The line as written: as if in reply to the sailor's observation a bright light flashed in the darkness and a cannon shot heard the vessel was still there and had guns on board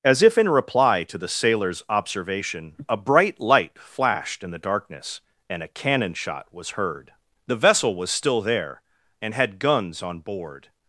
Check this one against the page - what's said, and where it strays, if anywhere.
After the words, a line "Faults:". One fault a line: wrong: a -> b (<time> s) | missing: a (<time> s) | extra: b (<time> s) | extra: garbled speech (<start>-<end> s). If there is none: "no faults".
as if in reply to the sailor's observation a bright light flashed in the darkness and a cannon shot was heard the vessel was still there and had guns on board
Faults:
extra: was (6.5 s)